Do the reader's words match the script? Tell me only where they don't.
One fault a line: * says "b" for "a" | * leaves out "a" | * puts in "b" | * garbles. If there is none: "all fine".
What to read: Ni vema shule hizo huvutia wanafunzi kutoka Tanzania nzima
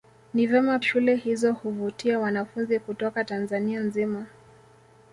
all fine